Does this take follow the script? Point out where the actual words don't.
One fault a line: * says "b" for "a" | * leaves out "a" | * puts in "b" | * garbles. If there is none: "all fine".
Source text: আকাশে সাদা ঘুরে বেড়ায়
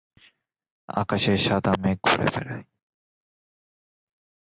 * puts in "মেঘ"